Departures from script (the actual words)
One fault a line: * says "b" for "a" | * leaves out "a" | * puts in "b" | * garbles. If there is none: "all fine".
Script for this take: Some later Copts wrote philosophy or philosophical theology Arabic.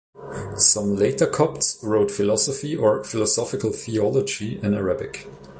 * puts in "in"